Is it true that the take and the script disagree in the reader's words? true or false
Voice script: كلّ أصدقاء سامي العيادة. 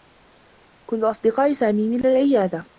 true